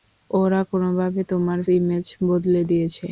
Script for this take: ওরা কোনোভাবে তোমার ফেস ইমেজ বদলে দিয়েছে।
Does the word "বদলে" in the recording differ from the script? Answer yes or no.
no